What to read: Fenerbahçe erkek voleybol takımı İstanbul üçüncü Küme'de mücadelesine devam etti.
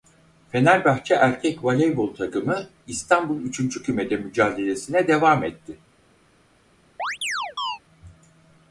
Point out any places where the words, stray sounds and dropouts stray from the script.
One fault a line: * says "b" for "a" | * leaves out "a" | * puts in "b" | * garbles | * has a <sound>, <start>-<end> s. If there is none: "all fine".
* has a chirp, 7.0-7.8 s